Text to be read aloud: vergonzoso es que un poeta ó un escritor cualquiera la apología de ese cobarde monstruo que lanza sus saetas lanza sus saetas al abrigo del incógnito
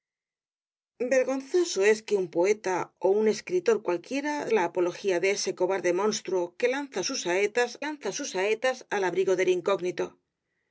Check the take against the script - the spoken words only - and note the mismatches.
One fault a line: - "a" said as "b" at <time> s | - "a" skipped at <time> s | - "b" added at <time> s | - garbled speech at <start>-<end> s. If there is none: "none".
none